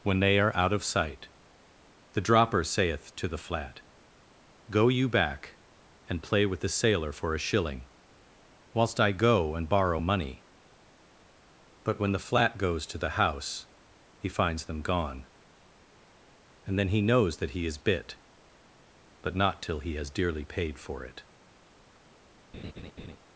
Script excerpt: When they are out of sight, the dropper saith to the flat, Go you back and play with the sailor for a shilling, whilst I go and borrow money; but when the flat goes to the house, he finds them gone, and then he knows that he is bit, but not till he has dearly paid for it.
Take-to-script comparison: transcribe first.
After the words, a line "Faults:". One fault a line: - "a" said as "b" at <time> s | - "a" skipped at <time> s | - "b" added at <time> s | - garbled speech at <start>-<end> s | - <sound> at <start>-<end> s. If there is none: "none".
When they are out of sight, the dropper saith to the flat, Go you back and play with the sailor for a shilling, whilst I go and borrow money; but when the flat goes to the house, he finds them gone, and then he knows that he is bit, but not till he has dearly paid for it.
Faults:
- laugh at 22.5-23.2 s